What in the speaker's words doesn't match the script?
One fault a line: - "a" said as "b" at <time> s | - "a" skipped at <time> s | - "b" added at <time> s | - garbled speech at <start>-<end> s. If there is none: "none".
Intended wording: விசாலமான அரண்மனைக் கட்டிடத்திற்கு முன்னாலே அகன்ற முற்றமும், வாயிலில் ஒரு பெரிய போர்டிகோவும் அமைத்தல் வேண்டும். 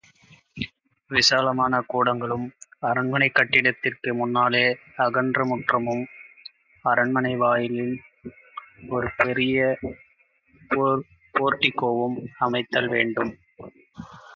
- "கூடங்களும்" added at 1.8 s
- "அரண்மனை" added at 6.8 s